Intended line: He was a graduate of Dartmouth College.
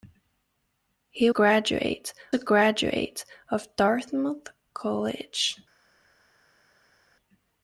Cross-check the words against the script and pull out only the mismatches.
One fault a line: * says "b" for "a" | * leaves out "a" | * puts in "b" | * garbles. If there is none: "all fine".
* says "graduate" for "was"